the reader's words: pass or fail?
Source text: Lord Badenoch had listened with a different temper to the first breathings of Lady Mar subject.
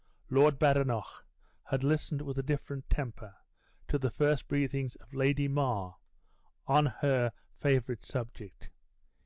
fail